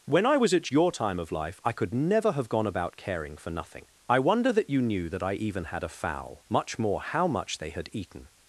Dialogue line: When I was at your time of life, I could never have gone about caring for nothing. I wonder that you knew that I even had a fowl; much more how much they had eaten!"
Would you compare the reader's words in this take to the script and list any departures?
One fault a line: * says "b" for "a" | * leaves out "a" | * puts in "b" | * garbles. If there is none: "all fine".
all fine